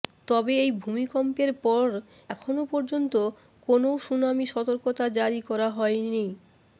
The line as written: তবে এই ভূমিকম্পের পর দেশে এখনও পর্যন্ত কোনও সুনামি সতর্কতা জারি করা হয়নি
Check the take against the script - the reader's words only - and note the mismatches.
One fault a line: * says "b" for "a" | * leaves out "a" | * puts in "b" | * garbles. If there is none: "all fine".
* leaves out "দেশে"